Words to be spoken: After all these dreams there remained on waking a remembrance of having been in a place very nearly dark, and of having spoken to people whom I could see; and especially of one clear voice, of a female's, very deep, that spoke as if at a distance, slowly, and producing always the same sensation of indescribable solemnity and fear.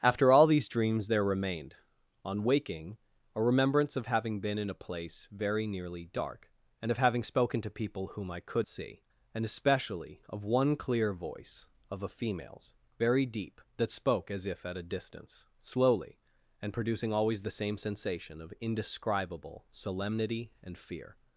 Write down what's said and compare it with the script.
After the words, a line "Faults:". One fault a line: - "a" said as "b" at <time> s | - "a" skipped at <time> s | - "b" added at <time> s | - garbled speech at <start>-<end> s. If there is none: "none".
After all these dreams there remained on waking a remembrance of having been in a place very nearly dark, and of having spoken to people whom I could see; and especially of one clear voice, of a female's, very deep, that spoke as if at a distance, slowly, and producing always the same sensation of indescribable solemnity and fear.
Faults:
none